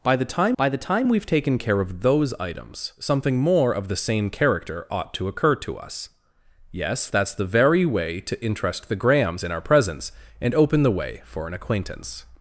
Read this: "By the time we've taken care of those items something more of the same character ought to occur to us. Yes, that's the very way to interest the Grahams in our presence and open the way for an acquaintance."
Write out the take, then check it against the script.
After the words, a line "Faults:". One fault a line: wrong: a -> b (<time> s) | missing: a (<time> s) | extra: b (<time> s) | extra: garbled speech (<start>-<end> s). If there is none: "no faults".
"By the time by the time we've taken care of those items something more of the same character ought to occur to us. Yes, that's the very way to interest the Grahams in our presence and open the way for an acquaintance."
Faults:
extra: by the time (0.6 s)